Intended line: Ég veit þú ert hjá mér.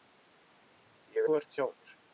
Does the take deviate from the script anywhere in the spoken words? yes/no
yes